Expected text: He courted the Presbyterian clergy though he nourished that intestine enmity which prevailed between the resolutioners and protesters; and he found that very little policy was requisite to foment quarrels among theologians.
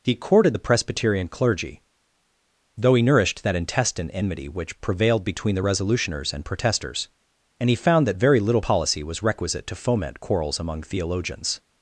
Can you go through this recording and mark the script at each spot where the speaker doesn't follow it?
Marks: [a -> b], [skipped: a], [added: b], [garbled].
He courted the Presbyterian clergy though he nourished that intestine enmity which prevailed between the resolutioners and protesters; and he found that very little policy was requisite to foment quarrels among theologians.